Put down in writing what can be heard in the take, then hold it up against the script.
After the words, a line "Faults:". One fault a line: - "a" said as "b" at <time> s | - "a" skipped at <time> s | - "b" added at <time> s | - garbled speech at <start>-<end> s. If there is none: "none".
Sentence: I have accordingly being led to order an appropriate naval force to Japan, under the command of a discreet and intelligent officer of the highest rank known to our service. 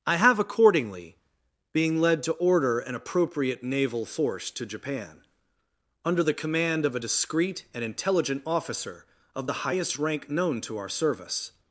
I have accordingly being led to order an appropriate naval force to Japan, under the command of a discreet and intelligent officer of the highest rank known to our service.
Faults:
none